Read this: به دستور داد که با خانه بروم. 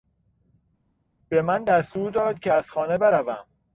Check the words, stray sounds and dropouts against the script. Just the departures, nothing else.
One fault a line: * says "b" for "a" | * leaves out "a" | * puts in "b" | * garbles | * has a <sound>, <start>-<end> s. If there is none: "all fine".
* puts in "من"
* says "از" for "با"